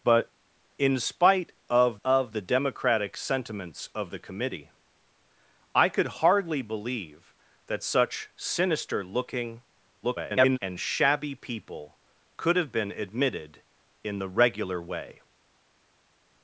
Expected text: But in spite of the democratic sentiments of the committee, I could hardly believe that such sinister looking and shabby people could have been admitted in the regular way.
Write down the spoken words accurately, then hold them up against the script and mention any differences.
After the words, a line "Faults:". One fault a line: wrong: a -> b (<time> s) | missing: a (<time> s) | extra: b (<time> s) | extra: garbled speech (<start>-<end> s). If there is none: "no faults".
But in spite of of the democratic sentiments of the committee, I could hardly believe that such sinister looking [garbled] and shabby people could have been admitted in the regular way.
Faults:
extra: of (2.0 s)
extra: garbled speech (10.0-10.6 s)